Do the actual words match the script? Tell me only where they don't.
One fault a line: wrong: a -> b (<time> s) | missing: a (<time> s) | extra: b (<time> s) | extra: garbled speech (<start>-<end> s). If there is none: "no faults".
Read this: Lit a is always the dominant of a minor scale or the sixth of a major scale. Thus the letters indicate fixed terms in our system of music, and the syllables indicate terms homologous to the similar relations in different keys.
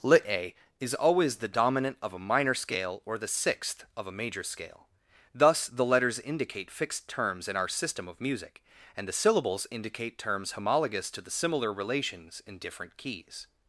no faults